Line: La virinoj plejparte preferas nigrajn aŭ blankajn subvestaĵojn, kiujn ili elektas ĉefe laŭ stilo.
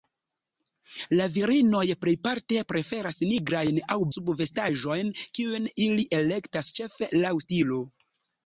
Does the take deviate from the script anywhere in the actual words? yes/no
yes